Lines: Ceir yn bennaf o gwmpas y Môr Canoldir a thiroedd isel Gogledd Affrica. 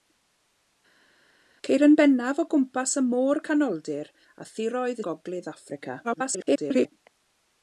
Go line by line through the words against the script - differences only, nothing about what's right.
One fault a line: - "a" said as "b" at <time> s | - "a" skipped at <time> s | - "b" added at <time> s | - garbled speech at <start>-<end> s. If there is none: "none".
- "isel" skipped at 5.0 s
- garbled speech at 6.0-6.9 s